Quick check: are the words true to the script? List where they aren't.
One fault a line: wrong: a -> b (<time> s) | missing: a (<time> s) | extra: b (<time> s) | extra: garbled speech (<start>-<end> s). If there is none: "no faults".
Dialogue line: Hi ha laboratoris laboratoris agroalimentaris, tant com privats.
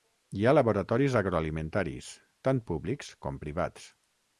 missing: laboratoris (1.2 s)
extra: públics (2.7 s)